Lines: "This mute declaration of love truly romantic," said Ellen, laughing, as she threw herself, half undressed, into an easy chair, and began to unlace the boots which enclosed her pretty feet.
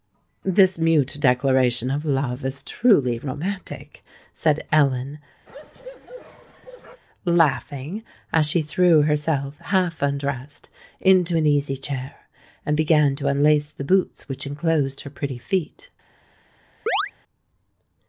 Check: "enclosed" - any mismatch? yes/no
no